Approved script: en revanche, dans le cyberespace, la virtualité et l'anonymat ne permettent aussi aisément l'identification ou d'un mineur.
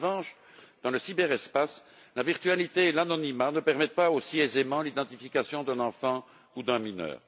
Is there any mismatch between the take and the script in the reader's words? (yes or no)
yes